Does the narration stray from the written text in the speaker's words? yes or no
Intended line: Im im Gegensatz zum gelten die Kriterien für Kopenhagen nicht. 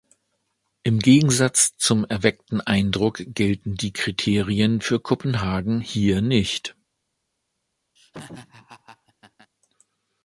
yes